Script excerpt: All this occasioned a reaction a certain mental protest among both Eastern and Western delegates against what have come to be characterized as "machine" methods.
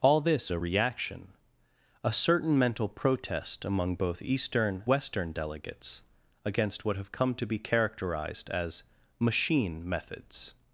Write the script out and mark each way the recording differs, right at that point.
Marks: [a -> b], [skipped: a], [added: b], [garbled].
All this [skipped: occasioned] a reaction a certain mental protest among both Eastern [skipped: and] Western delegates against what have come to be characterized as "machine" methods.